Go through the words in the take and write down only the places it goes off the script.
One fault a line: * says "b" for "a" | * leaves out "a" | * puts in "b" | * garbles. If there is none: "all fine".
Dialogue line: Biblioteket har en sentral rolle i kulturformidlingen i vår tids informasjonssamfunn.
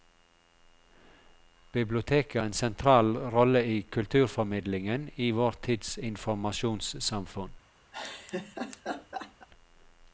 * leaves out "har"